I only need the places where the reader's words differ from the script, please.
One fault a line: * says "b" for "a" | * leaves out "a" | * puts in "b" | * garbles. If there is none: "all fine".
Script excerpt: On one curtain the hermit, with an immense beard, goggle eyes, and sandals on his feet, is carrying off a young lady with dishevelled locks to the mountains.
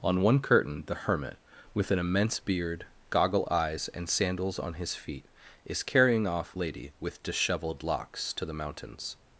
* leaves out "a young"